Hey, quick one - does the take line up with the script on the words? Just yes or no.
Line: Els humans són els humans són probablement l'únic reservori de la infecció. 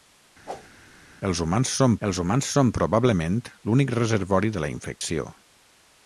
yes